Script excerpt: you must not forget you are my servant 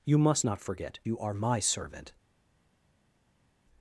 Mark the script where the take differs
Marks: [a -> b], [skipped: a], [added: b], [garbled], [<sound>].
you must not forget you are my servant